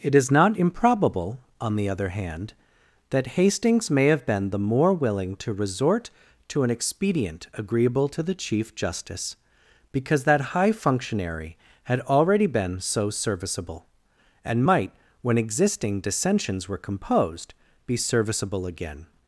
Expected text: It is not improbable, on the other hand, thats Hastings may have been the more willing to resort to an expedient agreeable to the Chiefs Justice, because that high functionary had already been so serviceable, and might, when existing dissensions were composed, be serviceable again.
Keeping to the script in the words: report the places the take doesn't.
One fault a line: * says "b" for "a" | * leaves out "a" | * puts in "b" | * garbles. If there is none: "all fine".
* says "that" for "thats"
* says "Chief" for "Chiefs"